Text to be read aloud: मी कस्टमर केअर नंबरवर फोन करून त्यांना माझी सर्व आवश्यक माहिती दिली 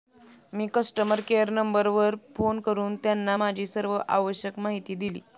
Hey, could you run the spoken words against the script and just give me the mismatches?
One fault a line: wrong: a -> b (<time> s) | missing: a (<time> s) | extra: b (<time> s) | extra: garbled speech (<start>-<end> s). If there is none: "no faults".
no faults